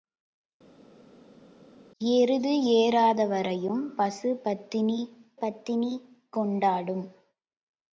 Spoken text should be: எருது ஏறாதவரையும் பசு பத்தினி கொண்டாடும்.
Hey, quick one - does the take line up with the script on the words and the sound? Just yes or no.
no